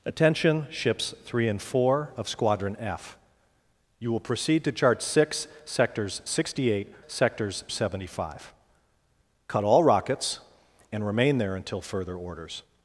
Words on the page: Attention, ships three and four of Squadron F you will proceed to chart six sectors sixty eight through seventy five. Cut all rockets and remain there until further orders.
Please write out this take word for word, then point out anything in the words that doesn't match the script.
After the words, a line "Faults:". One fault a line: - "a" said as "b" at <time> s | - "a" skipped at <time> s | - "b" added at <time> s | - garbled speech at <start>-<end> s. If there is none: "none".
Attention, ships three and four of Squadron F you will proceed to chart six sectors sixty eight sectors seventy five. Cut all rockets and remain there until further orders.
Faults:
- "through" said as "sectors" at 7.1 s